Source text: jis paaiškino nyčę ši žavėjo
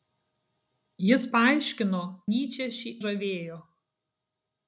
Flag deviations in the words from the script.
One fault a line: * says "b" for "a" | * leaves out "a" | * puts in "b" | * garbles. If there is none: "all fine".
all fine